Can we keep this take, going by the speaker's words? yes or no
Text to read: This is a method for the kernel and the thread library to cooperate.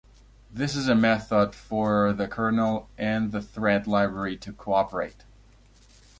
yes